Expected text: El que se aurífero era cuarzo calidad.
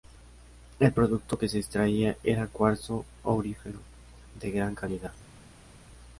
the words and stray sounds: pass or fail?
fail